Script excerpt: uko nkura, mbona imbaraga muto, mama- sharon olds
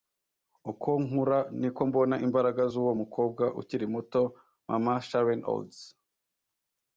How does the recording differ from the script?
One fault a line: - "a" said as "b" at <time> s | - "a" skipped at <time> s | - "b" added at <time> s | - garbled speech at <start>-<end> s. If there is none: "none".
- "niko" added at 1.6 s
- "z'uwo mukobwa ukiri" added at 2.7 s